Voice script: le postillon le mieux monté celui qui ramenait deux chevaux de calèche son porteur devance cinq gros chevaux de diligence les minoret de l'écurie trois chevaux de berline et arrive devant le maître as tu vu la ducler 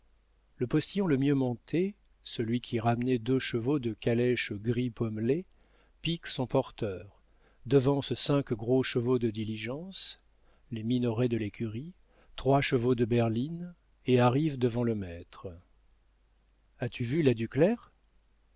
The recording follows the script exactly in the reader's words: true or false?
false